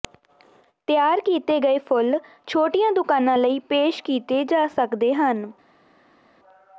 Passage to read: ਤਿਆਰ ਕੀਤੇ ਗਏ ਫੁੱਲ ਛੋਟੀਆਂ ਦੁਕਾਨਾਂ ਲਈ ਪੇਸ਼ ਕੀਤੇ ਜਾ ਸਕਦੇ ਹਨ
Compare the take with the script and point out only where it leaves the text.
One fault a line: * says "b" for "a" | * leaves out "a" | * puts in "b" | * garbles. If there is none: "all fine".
all fine